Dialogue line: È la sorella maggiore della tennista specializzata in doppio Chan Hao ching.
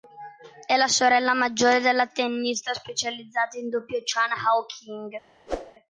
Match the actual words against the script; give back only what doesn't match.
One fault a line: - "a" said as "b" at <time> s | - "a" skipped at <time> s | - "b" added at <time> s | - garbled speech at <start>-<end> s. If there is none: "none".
none